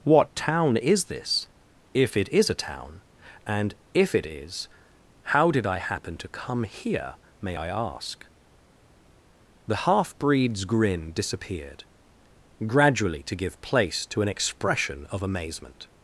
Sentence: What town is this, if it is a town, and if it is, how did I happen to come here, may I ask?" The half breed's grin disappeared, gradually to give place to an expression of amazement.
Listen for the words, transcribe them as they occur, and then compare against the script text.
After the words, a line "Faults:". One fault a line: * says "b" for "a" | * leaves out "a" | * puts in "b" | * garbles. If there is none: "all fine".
What town is this, if it is a town, and if it is, how did I happen to come here, may I ask?" The half breed's grin disappeared, gradually to give place to an expression of amazement.
Faults:
all fine